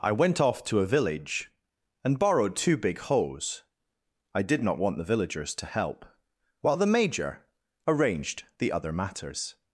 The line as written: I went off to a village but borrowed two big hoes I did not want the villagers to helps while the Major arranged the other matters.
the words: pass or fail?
fail